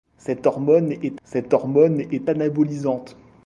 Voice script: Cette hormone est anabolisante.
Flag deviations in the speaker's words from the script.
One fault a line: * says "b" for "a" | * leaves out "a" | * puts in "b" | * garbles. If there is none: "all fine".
* puts in "cette hormone est"